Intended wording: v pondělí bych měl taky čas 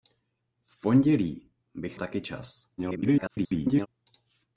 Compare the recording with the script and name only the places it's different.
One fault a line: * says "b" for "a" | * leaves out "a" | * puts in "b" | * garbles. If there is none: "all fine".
* leaves out "měl"
* garbles